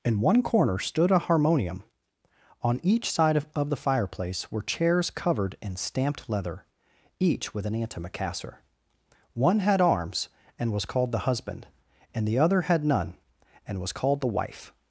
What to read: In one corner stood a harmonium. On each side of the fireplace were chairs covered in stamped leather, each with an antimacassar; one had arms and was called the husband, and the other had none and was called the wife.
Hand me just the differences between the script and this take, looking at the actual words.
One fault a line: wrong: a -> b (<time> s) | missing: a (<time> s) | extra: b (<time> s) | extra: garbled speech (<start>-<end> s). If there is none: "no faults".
extra: of (3.5 s)